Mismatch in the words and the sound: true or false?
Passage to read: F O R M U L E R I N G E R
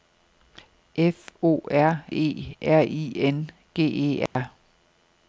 true